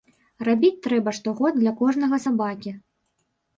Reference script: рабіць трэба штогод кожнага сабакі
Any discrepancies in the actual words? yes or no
yes